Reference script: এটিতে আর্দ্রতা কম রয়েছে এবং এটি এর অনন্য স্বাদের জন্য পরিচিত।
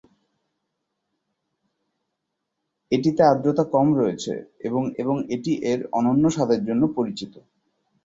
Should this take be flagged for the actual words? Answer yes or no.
yes